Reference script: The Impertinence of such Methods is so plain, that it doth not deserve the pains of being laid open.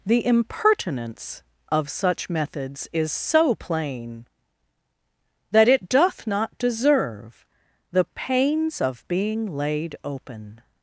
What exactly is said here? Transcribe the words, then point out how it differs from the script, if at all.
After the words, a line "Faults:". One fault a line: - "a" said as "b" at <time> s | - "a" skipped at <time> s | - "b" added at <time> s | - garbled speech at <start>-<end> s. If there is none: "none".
The Impertinence of such Methods is so plain, that it doth not deserve the pains of being laid open.
Faults:
none